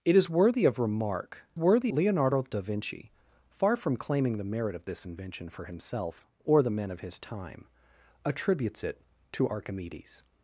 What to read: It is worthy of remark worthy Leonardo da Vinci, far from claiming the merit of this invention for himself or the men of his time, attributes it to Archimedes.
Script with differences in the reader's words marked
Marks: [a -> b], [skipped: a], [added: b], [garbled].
It is worthy of remark worthy Leonardo da Vinci, far from claiming the merit of this invention for himself or the men of his time, attributes it to Archimedes.